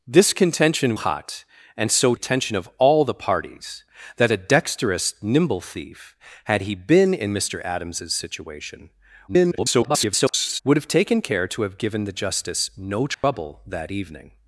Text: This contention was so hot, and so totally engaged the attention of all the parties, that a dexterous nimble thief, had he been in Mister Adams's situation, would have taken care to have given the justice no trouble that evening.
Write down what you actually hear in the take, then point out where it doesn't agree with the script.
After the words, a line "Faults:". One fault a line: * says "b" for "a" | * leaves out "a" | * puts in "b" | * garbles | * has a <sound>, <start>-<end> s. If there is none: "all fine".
This contention hot, and so attention of all the parties, that a dexterous nimble thief, had he been in Mister Adams's situation, [garbled] would have taken care to have given the justice no trouble that evening.
Faults:
* leaves out "was so"
* leaves out "totally engaged the"
* garbles
* has a dropout, 13.1-13.2 s